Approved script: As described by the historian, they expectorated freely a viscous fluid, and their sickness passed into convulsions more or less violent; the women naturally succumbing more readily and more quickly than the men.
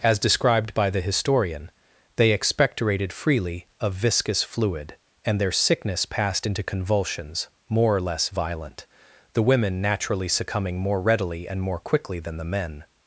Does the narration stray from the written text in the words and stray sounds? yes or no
no